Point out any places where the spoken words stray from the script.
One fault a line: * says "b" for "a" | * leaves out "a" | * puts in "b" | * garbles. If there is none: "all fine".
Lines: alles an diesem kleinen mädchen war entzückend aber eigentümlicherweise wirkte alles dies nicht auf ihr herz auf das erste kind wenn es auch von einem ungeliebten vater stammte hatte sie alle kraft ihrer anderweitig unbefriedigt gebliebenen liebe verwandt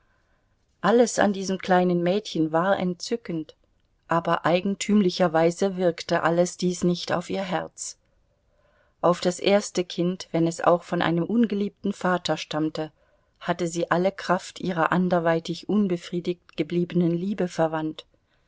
all fine